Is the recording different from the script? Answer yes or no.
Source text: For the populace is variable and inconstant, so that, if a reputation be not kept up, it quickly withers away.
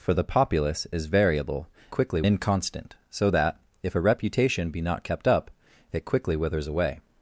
yes